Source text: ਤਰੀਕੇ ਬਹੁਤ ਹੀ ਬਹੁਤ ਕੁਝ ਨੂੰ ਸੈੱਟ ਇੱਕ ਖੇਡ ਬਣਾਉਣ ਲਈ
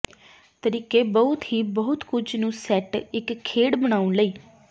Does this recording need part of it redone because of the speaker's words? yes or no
no